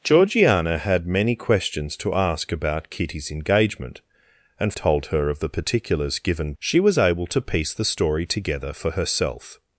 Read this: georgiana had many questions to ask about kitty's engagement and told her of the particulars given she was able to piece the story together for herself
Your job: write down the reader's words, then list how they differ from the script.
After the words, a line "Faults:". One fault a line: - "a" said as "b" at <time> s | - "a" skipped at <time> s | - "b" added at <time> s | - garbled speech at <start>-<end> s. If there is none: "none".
georgiana had many questions to ask about kitty's engagement and told her of the particulars given she was able to piece the story together for herself
Faults:
none